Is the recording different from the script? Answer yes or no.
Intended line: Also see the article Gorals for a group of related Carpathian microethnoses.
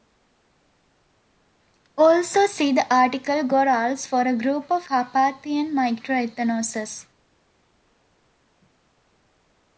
yes